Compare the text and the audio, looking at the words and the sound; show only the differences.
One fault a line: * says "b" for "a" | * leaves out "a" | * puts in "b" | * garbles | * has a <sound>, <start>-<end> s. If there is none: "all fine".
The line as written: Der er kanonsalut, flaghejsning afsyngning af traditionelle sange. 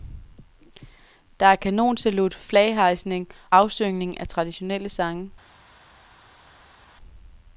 all fine